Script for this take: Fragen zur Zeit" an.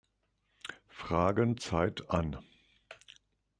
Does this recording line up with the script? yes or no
no